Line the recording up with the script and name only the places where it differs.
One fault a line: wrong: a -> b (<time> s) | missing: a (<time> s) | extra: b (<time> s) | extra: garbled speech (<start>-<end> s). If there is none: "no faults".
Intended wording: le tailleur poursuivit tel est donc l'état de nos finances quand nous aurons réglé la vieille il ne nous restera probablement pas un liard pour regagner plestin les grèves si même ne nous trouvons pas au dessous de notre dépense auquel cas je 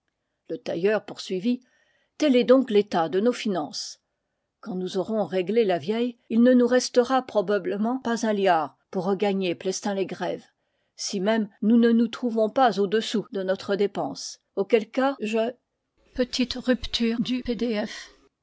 extra: nous (11.6 s)